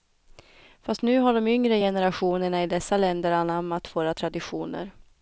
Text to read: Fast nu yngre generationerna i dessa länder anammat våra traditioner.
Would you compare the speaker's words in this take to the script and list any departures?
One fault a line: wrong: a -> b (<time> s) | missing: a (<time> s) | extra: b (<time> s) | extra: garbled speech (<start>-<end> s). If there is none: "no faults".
extra: har de (1.2 s)